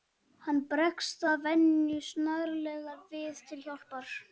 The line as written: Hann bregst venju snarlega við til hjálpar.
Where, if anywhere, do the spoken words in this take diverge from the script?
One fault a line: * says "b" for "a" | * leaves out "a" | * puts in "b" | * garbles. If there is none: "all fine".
* puts in "að"